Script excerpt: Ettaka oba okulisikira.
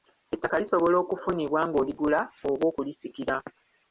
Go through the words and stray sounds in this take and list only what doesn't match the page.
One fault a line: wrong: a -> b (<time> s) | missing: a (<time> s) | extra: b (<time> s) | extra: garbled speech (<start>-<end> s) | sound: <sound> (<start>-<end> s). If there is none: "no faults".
extra: lisobola okufunibwa ng'oligula (0.6 s)